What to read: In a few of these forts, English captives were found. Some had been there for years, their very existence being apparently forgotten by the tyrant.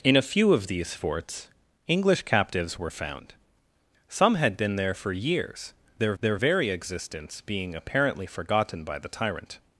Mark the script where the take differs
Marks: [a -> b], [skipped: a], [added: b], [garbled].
In a few of these forts, English captives were found. Some had been there for years, their [added: their] very existence being apparently forgotten by the tyrant.